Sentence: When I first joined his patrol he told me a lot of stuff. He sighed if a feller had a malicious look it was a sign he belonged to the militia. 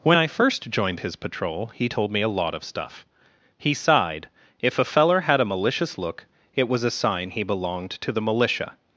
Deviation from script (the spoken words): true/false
false